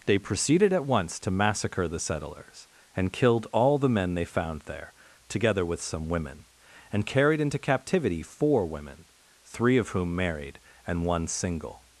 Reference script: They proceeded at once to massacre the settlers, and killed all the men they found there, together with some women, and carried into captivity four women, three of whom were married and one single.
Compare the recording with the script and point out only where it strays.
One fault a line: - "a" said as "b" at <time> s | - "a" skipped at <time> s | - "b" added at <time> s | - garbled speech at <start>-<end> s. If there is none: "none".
- "were" skipped at 10.2 s